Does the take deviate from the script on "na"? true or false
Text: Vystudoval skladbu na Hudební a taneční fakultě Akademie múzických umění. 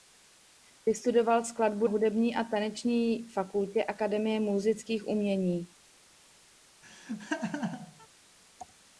true